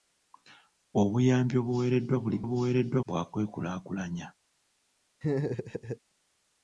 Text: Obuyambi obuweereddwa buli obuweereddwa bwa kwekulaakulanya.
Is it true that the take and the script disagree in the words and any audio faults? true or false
true